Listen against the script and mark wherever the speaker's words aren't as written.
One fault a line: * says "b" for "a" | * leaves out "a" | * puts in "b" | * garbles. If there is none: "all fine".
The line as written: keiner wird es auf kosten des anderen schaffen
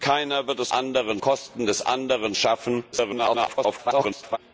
* says "anderen" for "auf"
* garbles